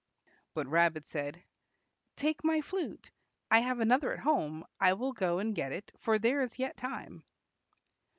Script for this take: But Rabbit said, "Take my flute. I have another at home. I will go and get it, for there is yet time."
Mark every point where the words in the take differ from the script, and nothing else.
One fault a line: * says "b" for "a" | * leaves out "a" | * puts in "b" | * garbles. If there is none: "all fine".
all fine